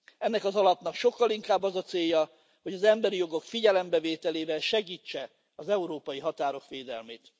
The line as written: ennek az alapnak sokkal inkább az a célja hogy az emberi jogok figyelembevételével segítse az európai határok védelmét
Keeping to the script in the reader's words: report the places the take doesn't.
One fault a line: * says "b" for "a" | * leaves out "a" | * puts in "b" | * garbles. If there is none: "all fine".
all fine